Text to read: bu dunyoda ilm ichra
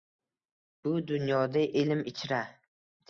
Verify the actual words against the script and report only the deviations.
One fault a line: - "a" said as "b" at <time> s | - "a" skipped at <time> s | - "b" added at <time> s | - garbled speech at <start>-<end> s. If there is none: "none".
none